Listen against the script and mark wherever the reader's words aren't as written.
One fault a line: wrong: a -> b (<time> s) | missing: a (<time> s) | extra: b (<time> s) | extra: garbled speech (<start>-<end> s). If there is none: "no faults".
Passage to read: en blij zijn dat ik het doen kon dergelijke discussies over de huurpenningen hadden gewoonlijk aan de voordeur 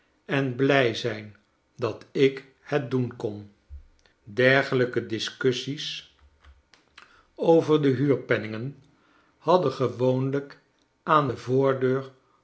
no faults